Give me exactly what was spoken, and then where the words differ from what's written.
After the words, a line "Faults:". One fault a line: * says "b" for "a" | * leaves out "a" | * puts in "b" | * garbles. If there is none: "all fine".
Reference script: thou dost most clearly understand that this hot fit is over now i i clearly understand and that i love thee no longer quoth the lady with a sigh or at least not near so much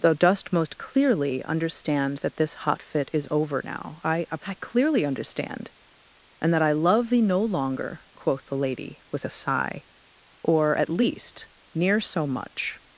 thou dost most clearly understand that this hot fit is over now i i clearly understand and that i love thee no longer quoth the lady with a sigh or at least near so much
Faults:
* leaves out "not"